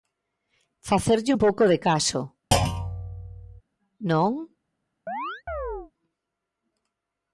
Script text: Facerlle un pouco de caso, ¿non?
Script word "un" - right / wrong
right